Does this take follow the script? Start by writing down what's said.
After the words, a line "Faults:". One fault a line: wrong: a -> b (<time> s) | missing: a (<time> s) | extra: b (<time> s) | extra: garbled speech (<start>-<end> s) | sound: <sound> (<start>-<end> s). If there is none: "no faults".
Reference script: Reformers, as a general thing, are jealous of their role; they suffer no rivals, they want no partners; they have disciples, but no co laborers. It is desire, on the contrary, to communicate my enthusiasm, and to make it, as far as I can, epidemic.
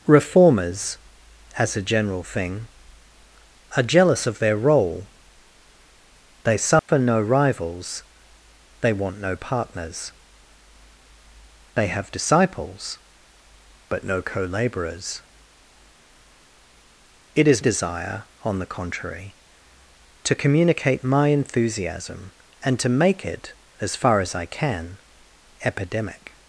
Reformers, as a general thing, are jealous of their role; they suffer no rivals, they want no partners; they have disciples, but no co laborers. It is desire, on the contrary, to communicate my enthusiasm, and to make it, as far as I can, epidemic.
Faults:
sound: dropout (6.8-6.9 s)